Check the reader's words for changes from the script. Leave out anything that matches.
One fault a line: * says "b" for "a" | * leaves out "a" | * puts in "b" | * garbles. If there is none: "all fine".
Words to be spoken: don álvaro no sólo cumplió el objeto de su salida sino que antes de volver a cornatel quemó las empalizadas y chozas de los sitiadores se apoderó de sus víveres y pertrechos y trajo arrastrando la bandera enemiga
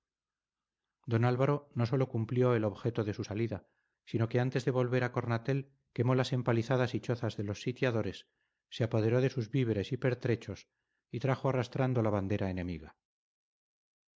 all fine